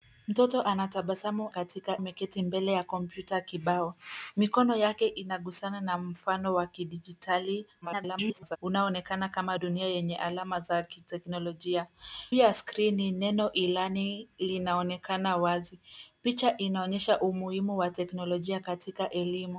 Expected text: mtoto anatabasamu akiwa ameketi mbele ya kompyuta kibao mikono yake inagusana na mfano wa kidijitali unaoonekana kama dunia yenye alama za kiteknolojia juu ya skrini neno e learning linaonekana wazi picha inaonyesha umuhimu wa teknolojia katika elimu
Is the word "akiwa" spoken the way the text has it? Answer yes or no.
no